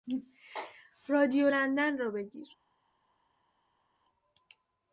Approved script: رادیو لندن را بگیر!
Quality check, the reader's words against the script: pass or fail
pass